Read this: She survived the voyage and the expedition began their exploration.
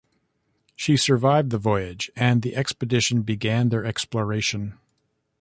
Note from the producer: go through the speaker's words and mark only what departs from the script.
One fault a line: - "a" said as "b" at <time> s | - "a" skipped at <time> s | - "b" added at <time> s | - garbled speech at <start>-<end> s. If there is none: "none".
none